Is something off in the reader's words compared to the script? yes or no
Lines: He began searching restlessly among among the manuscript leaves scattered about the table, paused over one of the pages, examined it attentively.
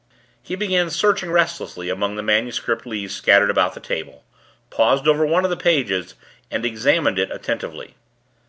yes